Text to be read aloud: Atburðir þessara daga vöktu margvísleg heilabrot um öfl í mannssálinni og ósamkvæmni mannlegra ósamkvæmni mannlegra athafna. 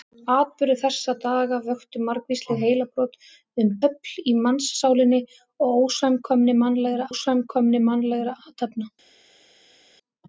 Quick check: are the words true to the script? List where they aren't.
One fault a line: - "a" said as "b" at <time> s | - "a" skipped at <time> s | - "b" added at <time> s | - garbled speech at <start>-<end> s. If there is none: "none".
none